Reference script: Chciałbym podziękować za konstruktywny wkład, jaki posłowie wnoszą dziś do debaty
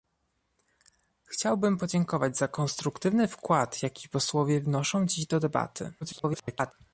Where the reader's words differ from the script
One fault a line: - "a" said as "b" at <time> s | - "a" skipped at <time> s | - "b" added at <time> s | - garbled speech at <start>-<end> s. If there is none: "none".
- garbled speech at 6.0-6.7 s